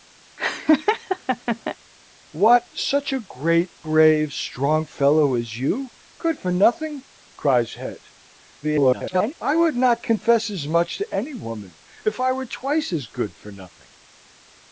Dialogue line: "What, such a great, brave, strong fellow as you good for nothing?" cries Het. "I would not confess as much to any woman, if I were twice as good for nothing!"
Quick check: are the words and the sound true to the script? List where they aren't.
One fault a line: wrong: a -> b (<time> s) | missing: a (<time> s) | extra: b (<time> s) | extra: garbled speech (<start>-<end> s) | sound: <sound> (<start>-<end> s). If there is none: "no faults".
sound: laugh (0.4-1.8 s)
extra: garbled speech (8.6-9.3 s)